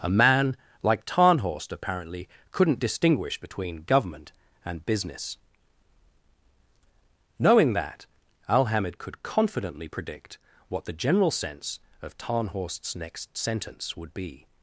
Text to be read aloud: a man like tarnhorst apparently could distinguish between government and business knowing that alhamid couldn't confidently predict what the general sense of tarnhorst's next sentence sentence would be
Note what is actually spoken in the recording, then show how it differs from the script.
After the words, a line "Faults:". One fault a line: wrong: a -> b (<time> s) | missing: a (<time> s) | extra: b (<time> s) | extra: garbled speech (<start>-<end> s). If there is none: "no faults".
a man like tarnhorst apparently couldn't distinguish between government and business knowing that alhamid could confidently predict what the general sense of tarnhorst's next sentence would be
Faults:
wrong: could -> couldn't (2.5 s)
wrong: couldn't -> could (9.0 s)
missing: sentence (13.9 s)